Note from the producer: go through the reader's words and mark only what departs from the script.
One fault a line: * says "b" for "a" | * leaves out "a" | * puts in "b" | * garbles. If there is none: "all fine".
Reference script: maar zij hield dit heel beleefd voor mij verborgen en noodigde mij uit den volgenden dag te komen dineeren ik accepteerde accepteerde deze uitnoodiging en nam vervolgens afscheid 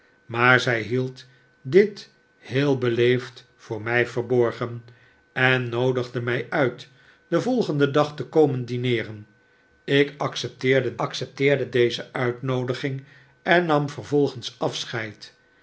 all fine